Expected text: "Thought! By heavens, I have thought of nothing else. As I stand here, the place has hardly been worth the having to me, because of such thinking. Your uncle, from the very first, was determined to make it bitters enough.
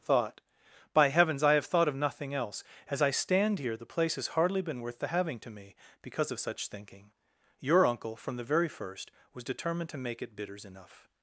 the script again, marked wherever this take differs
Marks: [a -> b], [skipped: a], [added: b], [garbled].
"Thought! By heavens, I have thought of nothing else. As I stand here, the place has hardly been worth the having to me, because of such thinking. Your uncle, from the very first, was determined to make it bitters enough.